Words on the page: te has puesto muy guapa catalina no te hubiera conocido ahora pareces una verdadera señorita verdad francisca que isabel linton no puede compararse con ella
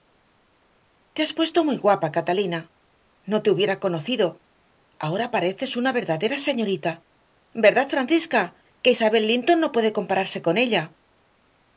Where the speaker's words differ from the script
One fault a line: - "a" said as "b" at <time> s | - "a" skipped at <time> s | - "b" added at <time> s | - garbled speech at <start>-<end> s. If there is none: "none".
none